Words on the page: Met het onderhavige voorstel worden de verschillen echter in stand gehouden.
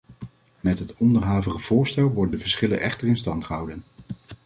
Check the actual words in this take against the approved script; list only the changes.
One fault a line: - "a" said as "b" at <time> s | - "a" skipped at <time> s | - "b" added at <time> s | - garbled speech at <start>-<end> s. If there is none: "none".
none